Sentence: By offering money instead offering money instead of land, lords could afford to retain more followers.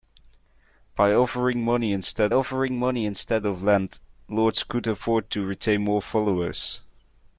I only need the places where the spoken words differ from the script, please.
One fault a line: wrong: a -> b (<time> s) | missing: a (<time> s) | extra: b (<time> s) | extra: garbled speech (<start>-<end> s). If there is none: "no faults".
no faults